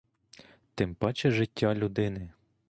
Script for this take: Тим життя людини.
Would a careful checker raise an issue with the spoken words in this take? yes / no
yes